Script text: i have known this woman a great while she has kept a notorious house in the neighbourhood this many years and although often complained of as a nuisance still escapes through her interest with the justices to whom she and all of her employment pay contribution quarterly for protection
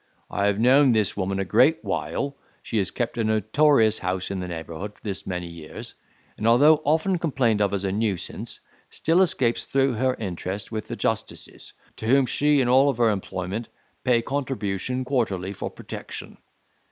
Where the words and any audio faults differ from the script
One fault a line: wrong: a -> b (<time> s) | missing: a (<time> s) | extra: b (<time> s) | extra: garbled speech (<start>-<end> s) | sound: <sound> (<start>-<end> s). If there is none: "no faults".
no faults